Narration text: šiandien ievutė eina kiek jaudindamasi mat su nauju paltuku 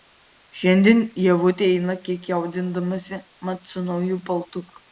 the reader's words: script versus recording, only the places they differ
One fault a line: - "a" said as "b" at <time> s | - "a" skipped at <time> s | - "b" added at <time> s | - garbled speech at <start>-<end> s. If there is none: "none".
none